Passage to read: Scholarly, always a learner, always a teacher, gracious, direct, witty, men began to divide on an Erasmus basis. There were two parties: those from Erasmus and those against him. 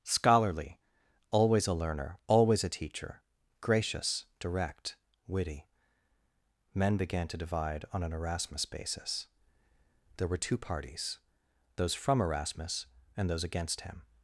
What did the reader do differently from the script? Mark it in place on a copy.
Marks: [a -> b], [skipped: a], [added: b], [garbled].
Scholarly, always a learner, always a teacher, gracious, direct, witty, men began to divide on an Erasmus basis. There were two parties: those from Erasmus and those against him.